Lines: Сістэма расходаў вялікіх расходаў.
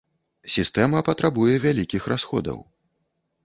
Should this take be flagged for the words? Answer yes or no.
yes